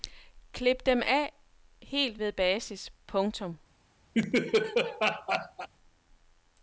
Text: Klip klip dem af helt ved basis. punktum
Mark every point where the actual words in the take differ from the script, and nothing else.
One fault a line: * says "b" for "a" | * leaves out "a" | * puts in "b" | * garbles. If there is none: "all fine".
* leaves out "klip"